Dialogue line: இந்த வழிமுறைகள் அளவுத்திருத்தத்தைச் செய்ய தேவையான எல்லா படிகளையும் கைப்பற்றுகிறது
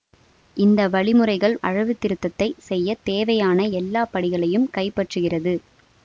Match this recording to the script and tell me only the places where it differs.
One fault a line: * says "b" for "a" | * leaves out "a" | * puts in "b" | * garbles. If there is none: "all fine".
all fine